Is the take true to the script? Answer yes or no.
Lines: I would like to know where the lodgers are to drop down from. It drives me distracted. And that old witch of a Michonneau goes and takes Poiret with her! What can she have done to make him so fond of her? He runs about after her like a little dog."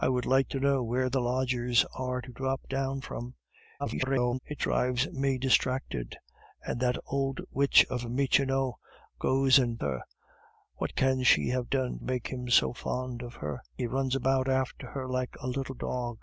no